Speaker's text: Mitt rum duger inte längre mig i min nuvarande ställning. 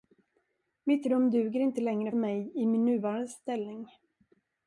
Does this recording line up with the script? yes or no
yes